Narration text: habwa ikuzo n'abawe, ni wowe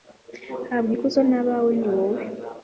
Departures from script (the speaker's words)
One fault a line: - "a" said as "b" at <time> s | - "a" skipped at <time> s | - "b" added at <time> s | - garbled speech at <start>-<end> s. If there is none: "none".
none